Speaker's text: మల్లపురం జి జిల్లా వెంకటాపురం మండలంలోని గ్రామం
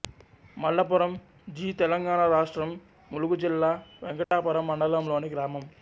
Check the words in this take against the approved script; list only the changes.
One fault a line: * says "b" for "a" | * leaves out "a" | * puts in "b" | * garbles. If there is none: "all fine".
* puts in "తెలంగాణ రాష్ట్రం ములుగు"